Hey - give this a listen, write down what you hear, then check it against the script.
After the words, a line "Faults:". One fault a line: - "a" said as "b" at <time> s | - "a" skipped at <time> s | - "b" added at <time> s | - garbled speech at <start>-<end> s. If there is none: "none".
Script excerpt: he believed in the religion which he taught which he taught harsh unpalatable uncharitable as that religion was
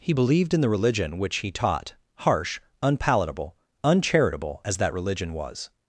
he believed in the religion which he taught harsh unpalatable uncharitable as that religion was
Faults:
- "which he taught" skipped at 1.9 s